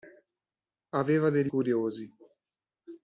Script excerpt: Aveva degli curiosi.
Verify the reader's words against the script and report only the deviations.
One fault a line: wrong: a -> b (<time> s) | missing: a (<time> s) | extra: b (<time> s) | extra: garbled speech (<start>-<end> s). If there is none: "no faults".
no faults